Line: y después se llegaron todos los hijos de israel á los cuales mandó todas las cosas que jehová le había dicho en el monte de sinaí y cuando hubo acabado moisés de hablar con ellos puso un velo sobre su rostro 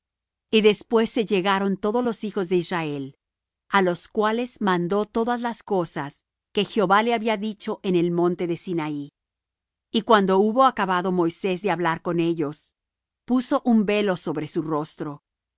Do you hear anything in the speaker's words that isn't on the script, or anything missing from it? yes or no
no